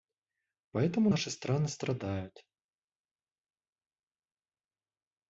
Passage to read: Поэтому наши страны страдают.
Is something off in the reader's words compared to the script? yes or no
no